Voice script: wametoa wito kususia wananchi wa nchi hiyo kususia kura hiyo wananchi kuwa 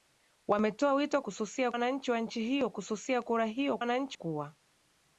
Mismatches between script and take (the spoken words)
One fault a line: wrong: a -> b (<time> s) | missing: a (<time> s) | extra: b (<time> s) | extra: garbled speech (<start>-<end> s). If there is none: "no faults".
no faults